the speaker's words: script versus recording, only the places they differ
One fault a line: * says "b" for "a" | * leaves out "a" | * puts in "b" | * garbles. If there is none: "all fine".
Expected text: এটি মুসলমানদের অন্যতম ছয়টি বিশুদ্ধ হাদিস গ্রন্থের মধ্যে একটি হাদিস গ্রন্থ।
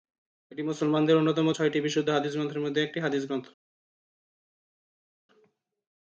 all fine